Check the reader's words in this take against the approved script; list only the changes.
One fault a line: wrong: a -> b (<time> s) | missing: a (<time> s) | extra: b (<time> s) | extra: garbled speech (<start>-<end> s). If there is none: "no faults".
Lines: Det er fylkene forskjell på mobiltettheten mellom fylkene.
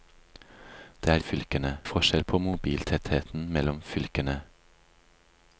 no faults